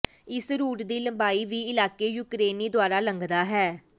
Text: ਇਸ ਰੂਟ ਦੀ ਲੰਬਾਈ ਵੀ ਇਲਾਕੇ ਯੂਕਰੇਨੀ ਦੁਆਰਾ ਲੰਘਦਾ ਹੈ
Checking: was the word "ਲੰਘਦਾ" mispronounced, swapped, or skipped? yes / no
no